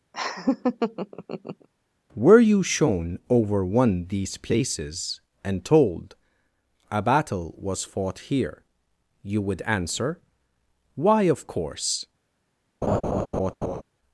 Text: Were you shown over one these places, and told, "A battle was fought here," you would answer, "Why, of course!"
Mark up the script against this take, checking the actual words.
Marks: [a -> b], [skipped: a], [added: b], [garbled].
Were you shown over one these places, and told, "A battle was fought here," you would answer, "Why, of course!"